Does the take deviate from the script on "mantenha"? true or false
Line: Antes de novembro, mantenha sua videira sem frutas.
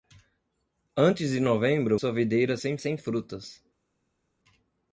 true